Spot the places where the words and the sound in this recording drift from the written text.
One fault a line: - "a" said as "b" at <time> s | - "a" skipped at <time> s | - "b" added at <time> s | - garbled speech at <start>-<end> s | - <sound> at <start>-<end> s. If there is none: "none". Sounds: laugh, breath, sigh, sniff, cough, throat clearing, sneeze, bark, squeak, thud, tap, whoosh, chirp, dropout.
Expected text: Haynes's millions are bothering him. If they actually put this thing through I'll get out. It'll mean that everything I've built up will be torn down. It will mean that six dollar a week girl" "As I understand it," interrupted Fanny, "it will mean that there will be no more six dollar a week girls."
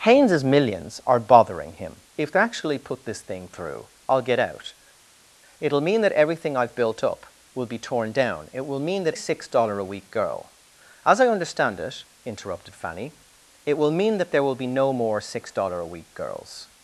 none